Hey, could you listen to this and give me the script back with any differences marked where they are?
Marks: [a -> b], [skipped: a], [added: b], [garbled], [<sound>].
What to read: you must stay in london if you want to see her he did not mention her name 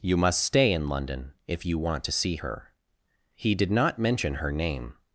you must stay in london if you want to see her he did not mention her name